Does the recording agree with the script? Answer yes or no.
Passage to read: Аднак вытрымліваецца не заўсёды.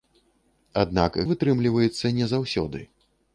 yes